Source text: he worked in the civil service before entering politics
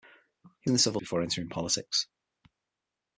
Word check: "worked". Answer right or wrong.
wrong